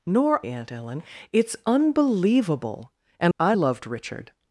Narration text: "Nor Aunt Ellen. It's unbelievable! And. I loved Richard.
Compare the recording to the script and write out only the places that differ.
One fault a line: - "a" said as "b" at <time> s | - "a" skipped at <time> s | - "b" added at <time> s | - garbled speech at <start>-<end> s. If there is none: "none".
none